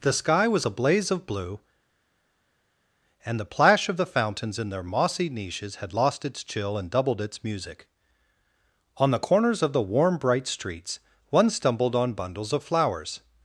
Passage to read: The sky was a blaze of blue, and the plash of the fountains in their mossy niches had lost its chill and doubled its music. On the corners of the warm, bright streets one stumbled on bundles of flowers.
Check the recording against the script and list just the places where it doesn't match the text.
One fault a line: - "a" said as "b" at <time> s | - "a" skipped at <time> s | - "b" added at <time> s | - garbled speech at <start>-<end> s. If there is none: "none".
none